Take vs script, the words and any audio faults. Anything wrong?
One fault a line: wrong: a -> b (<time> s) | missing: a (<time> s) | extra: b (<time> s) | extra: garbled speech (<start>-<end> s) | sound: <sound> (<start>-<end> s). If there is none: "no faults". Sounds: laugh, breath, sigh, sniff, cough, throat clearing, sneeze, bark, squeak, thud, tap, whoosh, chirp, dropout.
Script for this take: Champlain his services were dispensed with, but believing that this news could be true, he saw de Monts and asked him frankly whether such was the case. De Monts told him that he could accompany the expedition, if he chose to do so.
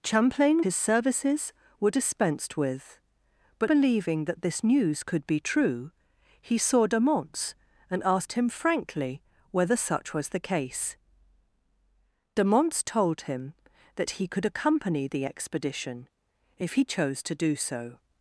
no faults